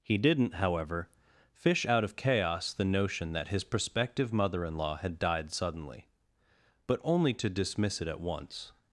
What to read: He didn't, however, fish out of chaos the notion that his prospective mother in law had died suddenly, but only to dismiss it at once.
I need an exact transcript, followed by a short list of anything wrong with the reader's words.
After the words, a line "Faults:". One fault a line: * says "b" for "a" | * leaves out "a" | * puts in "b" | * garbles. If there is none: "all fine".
He didn't, however, fish out of chaos the notion that his prospective mother in law had died suddenly, but only to dismiss it at once.
Faults:
all fine